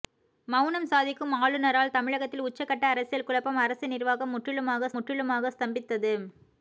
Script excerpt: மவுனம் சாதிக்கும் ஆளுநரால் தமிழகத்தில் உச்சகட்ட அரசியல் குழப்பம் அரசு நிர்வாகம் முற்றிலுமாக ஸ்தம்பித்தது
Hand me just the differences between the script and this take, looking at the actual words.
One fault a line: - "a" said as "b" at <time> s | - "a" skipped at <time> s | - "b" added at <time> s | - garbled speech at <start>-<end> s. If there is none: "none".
- "முற்றிலுமாக" added at 4.9 s